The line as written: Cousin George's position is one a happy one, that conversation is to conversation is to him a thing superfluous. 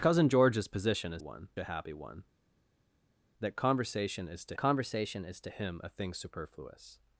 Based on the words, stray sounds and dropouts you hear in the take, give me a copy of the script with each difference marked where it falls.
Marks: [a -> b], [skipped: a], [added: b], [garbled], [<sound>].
Cousin George's position is one a happy one, that conversation is to conversation is to him a thing superfluous.